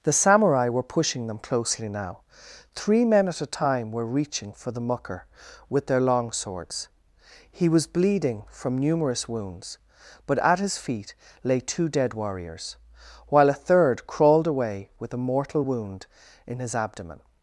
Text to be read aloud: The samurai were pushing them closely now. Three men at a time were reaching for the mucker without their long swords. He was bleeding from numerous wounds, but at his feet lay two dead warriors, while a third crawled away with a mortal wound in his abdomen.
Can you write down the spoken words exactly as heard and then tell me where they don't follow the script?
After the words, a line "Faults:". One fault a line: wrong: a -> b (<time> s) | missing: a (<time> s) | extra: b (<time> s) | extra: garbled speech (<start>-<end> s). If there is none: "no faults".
The samurai were pushing them closely now. Three men at a time were reaching for the mucker with their long swords. He was bleeding from numerous wounds, but at his feet lay two dead warriors, while a third crawled away with a mortal wound in his abdomen.
Faults:
wrong: without -> with (5.7 s)